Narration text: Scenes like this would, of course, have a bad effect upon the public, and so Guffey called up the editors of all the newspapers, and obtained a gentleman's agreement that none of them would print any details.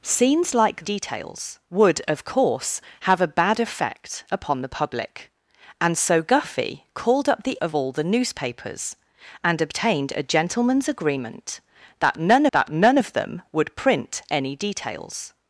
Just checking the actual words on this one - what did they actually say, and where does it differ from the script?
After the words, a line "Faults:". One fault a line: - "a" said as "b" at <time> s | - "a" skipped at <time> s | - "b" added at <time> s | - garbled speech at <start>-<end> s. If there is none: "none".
Scenes like details would, of course, have a bad effect upon the public, and so Guffey called up the of all the newspapers, and obtained a gentleman's agreement that none that none of them would print any details.
Faults:
- "this" said as "details" at 0.8 s
- "editors" skipped at 7.6 s
- "that none" added at 12.5 s